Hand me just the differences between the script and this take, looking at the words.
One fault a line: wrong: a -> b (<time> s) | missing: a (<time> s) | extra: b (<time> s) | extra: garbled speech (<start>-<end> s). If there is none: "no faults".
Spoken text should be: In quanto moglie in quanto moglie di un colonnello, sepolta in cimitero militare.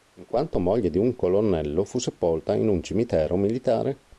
missing: in quanto moglie (0.9 s)
extra: fu (1.8 s)
extra: un (2.7 s)